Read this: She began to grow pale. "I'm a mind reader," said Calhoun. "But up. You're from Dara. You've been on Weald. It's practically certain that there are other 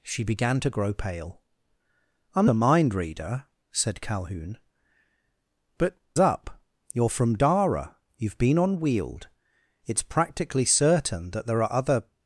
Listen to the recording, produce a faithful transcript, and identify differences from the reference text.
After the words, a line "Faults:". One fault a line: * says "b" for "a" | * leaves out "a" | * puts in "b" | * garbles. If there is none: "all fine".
She began to grow pale. "I'm a mind reader," said Calhoun. "But up. You're from Dara. You've been on Weald. It's practically certain that there are other
Faults:
all fine